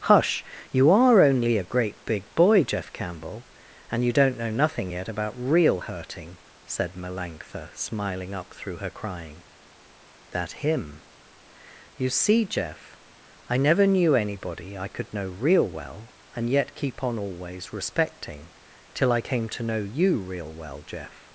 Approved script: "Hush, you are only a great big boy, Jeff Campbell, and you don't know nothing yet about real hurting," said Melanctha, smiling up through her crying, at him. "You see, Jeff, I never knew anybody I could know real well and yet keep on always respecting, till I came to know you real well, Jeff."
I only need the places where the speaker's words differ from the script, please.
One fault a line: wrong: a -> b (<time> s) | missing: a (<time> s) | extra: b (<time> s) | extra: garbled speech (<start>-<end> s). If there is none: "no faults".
wrong: at -> that (10.3 s)